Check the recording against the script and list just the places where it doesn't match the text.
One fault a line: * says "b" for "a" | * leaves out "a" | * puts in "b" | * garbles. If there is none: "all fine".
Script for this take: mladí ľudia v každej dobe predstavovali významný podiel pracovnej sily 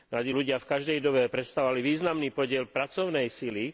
all fine